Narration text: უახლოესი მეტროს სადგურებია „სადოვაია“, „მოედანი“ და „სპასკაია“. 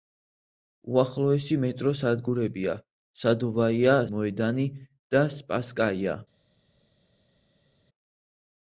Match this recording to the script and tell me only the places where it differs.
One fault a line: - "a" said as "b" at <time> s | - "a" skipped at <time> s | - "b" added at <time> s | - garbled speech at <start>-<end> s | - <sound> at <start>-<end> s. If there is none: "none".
none